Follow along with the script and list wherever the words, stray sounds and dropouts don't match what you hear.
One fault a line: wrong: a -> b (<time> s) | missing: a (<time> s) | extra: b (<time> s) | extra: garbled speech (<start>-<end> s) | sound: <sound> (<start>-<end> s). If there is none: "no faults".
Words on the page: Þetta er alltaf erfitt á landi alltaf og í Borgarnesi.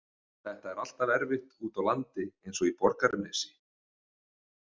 extra: úti (1.7 s)
wrong: alltaf -> eins (2.5 s)